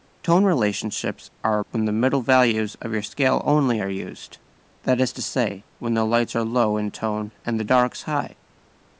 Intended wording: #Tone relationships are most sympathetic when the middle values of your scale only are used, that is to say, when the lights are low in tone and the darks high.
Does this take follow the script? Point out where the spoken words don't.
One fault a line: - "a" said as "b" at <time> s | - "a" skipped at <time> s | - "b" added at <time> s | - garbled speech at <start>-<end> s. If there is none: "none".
- "most sympathetic" skipped at 1.6 s